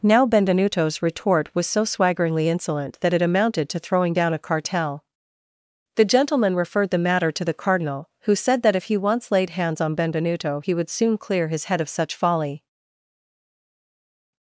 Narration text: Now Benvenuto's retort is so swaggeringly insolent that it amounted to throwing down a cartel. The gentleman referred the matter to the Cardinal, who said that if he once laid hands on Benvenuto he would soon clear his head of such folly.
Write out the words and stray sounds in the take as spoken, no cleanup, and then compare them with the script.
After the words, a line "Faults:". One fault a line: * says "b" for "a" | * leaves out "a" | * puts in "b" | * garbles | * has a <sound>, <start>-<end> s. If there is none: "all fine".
Now Benvenuto's retort was so swaggeringly insolent that it amounted to throwing down a cartel. The gentleman referred the matter to the Cardinal, who said that if he once laid hands on Benvenuto he would soon clear his head of such folly.
Faults:
* says "was" for "is"